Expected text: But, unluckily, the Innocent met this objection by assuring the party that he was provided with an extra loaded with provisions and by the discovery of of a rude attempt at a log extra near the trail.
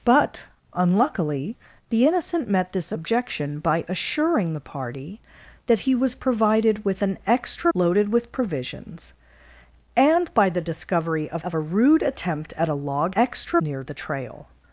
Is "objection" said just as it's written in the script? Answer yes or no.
yes